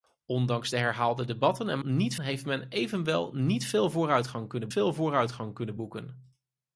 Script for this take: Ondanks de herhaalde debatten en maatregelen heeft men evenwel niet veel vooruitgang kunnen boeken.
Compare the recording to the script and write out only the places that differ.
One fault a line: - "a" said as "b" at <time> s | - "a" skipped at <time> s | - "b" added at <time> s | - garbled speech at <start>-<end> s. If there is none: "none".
- "maatregelen" said as "niet" at 1.8 s
- "veel vooruitgang kunnen" added at 4.7 s